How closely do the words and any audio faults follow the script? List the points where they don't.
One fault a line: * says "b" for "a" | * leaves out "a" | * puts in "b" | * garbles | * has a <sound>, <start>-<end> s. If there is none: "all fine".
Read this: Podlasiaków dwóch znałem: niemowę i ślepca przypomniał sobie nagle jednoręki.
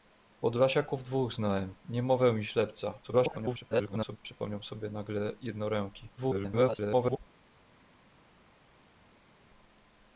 * garbles
* garbles